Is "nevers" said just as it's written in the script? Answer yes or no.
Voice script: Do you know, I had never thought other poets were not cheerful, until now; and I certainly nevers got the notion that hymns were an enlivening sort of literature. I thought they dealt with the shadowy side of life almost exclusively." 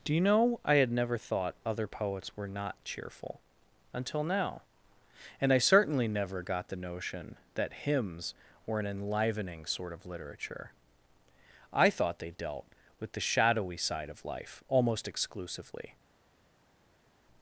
no